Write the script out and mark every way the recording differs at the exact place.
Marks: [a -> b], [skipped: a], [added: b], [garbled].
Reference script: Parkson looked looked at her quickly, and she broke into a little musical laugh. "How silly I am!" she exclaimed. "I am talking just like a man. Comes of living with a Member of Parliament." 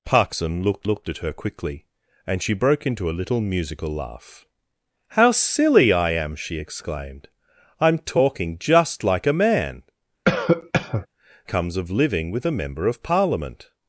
Parkson looked looked at her quickly, and she broke into a little musical laugh. "How silly I am!" she exclaimed. "I am talking just like a man. Comes of living with a Member of Parliament."